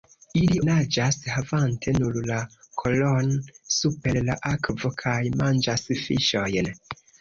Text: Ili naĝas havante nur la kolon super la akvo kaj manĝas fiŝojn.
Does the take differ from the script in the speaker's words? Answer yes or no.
no